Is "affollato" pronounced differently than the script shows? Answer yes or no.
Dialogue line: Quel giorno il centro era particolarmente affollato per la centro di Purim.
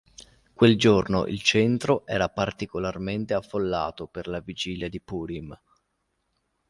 no